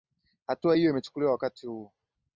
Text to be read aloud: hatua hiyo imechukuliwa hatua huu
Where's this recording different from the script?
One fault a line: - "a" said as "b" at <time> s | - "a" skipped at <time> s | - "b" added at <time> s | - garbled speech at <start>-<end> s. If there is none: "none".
- "hatua" said as "wakati" at 1.3 s